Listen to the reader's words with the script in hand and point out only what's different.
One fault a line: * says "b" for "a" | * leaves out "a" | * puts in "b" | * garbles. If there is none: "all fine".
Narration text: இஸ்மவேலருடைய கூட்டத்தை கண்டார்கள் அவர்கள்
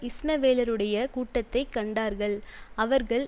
all fine